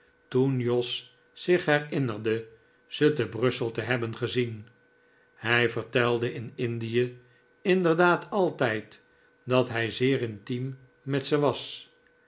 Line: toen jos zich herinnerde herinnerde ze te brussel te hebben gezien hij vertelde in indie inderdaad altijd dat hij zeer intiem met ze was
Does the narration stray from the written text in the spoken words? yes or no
yes